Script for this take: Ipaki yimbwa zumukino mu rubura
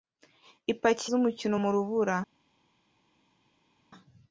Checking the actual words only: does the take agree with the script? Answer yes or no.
no